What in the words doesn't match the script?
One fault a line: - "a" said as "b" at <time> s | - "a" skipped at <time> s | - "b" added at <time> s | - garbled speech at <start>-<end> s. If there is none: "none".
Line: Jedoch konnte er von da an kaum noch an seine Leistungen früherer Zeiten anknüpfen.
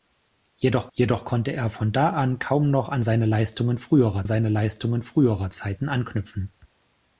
- "jedoch" added at 0.9 s
- "seine Leistungen früherer" added at 4.2 s